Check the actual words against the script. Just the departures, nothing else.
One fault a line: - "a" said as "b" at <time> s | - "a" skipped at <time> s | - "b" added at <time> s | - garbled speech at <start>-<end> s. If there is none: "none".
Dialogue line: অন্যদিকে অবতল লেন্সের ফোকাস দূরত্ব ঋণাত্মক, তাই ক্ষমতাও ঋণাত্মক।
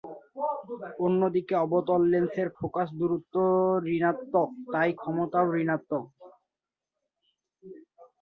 none